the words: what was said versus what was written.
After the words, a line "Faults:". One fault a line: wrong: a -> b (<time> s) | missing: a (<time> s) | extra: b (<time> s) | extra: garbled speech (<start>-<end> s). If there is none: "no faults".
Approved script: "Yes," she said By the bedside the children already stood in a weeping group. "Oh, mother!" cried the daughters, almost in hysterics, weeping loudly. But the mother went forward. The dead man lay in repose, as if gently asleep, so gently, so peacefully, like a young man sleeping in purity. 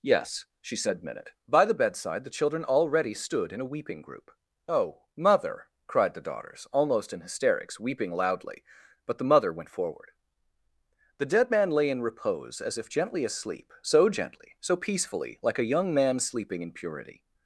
"Yes," she said minute By the bedside the children already stood in a weeping group. "Oh, mother!" cried the daughters, almost in hysterics, weeping loudly. But the mother went forward. The dead man lay in repose, as if gently asleep, so gently, so peacefully, like a young man sleeping in purity.
Faults:
extra: minute (1.0 s)